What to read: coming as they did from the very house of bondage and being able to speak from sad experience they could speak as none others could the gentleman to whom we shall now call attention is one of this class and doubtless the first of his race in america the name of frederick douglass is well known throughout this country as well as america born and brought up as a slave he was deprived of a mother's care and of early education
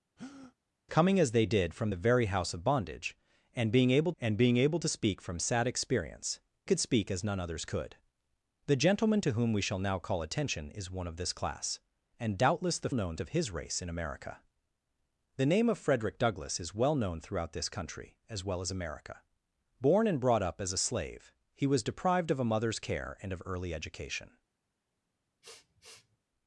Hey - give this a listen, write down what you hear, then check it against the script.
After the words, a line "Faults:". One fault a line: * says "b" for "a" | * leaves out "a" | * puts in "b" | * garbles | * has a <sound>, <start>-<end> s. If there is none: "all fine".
coming as they did from the very house of bondage and being able and being able to speak from sad experience could speak as none others could the gentleman to whom we shall now call attention is one of this class and doubtless the known of his race in america the name of frederick douglass is well known throughout this country as well as america born and brought up as a slave he was deprived of a mother's care and of early education
Faults:
* has a breath, 0.2-0.5 s
* puts in "and being able"
* leaves out "they"
* says "known" for "first"
* has a sniff, 25.4-26.2 s